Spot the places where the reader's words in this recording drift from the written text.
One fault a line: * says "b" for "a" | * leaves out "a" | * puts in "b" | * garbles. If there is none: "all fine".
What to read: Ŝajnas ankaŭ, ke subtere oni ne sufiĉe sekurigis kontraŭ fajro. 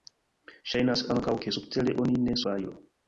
* leaves out "sufiĉe sekurigis kontraŭ"